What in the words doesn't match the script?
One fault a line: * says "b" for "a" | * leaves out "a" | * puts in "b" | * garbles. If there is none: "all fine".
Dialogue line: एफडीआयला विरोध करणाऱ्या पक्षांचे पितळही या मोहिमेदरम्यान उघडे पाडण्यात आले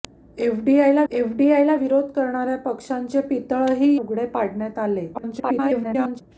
* puts in "एफडीआयला"
* leaves out "या मोहिमेदरम्यान"
* garbles